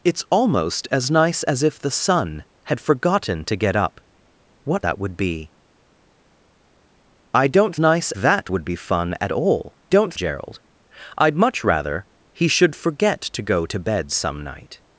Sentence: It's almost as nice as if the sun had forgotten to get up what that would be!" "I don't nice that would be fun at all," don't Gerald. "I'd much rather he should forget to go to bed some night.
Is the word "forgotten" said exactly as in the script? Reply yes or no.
yes